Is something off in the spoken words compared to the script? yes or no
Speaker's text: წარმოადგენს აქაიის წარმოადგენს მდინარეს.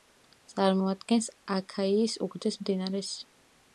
yes